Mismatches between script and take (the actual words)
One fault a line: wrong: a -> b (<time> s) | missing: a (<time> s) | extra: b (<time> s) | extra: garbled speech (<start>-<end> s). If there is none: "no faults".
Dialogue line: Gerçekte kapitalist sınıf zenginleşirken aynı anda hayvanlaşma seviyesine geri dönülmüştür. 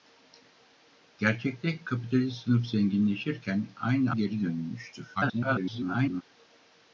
missing: anda hayvanlaşma seviyesine (4.1 s)
extra: garbled speech (5.1-6.2 s)